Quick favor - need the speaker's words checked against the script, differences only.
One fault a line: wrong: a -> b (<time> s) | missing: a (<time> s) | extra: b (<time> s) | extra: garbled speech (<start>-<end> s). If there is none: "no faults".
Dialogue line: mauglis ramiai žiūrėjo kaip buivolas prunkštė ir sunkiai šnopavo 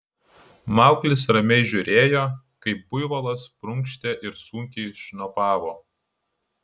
no faults